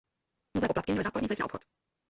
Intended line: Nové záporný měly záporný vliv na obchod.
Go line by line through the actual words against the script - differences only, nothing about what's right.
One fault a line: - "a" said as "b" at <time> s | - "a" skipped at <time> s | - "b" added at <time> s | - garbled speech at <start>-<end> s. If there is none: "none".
- "záporný" said as "poplatky" at 0.7 s